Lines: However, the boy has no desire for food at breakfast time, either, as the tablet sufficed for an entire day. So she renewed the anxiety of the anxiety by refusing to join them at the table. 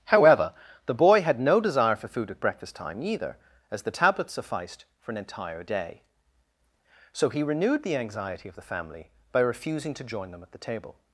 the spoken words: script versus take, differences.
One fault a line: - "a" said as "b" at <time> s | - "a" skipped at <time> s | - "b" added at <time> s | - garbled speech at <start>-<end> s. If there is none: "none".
- "has" said as "had" at 1.2 s
- "she" said as "he" at 7.3 s
- "anxiety" said as "family" at 8.6 s